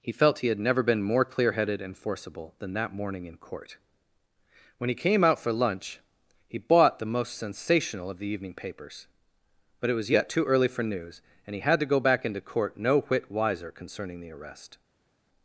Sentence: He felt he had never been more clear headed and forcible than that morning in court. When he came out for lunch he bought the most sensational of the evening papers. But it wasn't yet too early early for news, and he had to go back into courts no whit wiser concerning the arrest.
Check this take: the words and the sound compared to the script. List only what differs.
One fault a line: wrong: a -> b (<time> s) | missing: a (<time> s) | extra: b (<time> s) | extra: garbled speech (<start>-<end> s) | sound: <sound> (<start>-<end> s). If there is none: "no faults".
wrong: wasn't -> was (9.9 s)
missing: early (10.7 s)
wrong: courts -> court (12.4 s)